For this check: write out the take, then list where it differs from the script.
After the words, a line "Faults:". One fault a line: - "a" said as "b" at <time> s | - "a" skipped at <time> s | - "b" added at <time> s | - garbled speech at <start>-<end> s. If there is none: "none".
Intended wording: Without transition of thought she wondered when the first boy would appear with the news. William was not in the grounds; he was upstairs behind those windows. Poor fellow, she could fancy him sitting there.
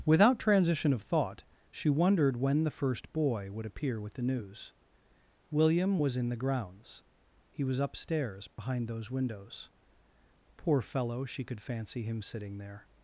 Without transition of thought she wondered when the first boy would appear with the news. William was in the grounds; he was upstairs behind those windows. Poor fellow, she could fancy him sitting there.
Faults:
- "not" skipped at 6.2 s